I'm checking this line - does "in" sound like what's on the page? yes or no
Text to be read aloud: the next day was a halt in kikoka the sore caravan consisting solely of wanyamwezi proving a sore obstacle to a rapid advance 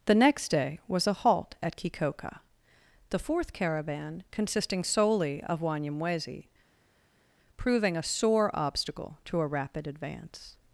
no